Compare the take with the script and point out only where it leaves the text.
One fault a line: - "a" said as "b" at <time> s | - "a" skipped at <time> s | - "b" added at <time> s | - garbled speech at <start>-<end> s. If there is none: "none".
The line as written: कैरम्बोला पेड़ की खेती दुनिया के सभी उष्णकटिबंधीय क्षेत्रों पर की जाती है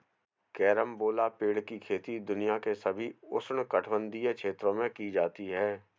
- "पर" said as "में" at 4.7 s